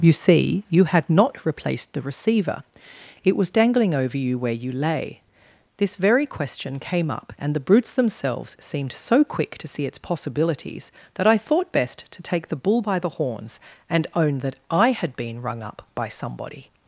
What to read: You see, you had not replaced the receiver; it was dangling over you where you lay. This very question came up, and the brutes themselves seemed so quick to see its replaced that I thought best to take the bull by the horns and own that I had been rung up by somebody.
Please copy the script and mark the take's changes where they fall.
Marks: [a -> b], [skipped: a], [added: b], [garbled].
You see, you had not replaced the receiver; it was dangling over you where you lay. This very question came up, and the brutes themselves seemed so quick to see its [replaced -> possibilities] that I thought best to take the bull by the horns and own that I had been rung up by somebody.